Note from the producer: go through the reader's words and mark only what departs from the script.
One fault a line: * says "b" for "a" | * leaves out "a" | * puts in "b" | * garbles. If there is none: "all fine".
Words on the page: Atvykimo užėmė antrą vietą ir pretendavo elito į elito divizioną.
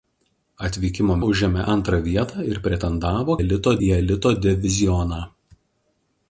all fine